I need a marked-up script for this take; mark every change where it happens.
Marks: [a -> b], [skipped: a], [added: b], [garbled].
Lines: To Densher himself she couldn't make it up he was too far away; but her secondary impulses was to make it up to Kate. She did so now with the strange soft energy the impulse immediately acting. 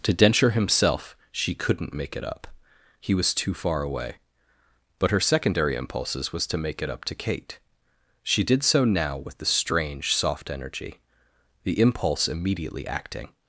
To Densher himself she couldn't make it up he was too far away; but her secondary impulses was to make it up to Kate. She did so now with the strange soft energy the impulse immediately acting.